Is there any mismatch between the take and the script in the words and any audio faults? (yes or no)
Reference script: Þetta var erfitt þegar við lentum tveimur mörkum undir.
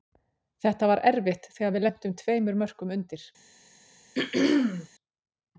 yes